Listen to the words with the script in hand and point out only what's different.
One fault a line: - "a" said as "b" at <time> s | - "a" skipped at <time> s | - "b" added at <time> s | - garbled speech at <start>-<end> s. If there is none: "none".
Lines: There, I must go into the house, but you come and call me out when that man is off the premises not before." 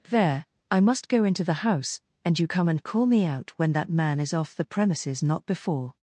- "but" said as "and" at 2.2 s